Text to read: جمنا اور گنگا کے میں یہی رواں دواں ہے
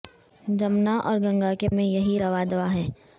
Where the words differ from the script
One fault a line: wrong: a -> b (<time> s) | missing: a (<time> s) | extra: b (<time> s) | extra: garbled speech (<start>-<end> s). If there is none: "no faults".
no faults